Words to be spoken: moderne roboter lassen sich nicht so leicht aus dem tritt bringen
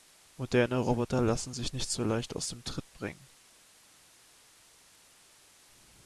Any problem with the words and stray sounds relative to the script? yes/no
no